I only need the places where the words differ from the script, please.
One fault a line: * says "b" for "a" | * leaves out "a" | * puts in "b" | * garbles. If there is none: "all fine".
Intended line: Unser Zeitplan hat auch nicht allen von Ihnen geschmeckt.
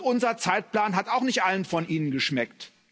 all fine